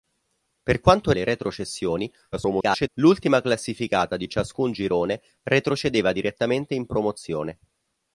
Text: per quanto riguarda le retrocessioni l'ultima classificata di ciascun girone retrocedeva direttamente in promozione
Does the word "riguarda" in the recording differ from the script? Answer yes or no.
yes